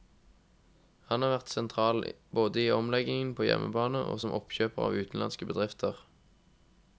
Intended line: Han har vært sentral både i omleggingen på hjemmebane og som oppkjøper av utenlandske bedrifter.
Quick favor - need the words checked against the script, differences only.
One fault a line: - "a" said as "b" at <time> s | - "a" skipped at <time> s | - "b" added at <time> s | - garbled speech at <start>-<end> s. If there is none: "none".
none